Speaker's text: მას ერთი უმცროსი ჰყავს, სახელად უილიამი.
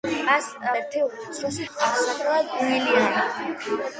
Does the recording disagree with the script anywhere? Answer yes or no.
no